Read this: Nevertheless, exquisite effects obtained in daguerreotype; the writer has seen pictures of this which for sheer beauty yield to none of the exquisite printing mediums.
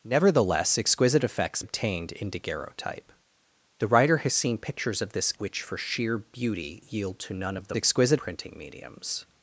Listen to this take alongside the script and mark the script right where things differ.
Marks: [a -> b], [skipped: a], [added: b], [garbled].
Nevertheless, exquisite effects obtained in daguerreotype; the writer has seen pictures of this which for sheer beauty yield to none of the exquisite printing mediums.